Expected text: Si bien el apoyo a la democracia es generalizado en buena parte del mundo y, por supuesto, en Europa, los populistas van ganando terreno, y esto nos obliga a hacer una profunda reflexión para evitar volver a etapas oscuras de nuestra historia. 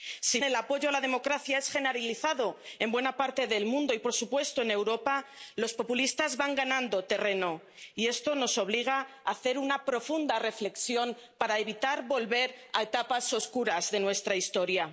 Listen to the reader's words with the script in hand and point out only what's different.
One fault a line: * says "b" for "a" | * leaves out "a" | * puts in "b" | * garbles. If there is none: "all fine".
* leaves out "bien"